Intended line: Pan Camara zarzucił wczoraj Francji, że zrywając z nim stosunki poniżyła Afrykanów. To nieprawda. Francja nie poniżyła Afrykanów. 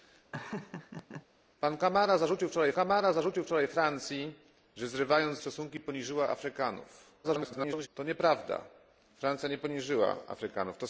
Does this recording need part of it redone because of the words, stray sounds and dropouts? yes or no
yes